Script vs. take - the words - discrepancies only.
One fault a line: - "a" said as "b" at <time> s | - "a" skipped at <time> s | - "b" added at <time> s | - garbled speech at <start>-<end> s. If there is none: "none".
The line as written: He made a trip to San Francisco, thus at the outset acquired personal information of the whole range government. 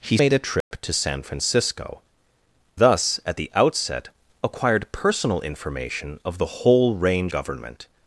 none